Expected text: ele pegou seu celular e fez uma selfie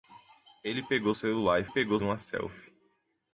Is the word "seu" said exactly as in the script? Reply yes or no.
no